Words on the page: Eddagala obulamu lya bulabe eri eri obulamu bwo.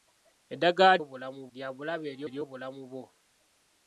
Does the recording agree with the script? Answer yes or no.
yes